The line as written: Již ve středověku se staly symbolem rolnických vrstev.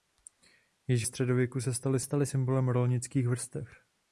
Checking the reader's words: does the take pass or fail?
fail